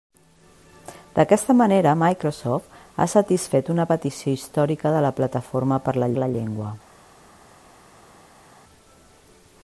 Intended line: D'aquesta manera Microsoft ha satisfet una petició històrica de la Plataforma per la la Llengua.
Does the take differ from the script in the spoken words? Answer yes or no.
no